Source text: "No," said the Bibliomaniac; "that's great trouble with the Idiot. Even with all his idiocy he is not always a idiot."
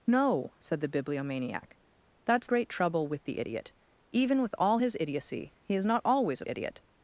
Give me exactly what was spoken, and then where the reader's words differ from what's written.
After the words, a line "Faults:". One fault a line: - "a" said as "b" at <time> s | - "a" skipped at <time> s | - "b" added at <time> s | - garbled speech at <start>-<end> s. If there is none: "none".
"No," said the Bibliomaniac; "that's great trouble with the Idiot. Even with all his idiocy he is not always a idiot."
Faults:
none